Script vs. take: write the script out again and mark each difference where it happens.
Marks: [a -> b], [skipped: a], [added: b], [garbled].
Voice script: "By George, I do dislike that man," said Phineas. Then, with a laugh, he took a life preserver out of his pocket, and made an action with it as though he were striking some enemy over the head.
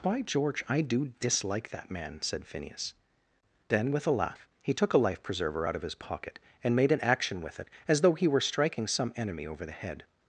"By George, I do dislike that man," said Phineas. Then, with a laugh, he took a life preserver out of his pocket, and made an action with it as though he were striking some enemy over the head.